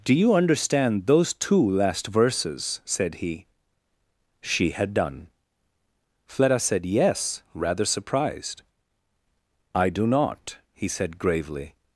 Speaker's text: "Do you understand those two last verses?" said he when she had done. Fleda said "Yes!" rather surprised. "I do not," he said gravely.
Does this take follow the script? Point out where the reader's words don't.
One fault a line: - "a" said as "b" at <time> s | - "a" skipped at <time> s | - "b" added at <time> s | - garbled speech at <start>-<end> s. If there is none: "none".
- "when" skipped at 3.5 s